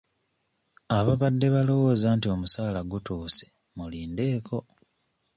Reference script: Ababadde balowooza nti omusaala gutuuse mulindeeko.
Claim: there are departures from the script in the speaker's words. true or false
false